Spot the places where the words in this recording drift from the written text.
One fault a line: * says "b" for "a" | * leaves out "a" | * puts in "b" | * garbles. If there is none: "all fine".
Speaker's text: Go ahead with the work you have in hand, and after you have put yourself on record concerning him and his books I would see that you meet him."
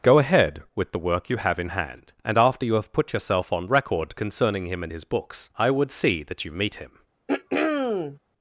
all fine